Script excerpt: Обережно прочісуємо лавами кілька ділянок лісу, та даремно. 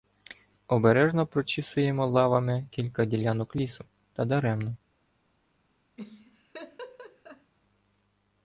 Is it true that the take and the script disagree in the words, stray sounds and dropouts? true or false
true